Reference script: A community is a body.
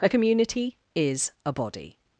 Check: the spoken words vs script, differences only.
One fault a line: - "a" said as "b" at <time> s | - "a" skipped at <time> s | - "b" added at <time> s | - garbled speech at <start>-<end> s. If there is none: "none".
none